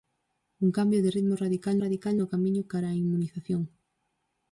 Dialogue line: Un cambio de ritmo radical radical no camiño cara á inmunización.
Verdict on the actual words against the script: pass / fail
pass